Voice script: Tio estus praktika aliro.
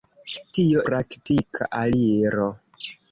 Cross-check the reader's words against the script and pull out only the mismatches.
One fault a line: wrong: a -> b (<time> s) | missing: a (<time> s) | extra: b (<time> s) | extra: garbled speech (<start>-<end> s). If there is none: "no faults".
missing: estus (0.8 s)